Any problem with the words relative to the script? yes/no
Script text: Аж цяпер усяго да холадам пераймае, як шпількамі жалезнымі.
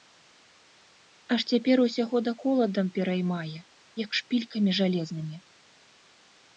no